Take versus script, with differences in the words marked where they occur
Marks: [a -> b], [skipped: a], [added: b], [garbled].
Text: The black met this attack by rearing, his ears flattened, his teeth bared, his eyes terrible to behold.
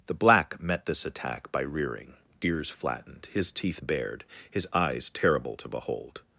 The black met this attack by rearing, [skipped: his] ears flattened, his teeth bared, his eyes terrible to behold.